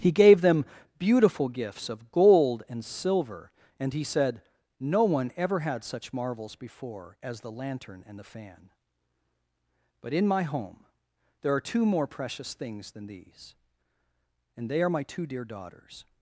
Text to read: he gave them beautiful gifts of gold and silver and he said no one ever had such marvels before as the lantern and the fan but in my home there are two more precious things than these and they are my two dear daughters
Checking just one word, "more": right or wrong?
right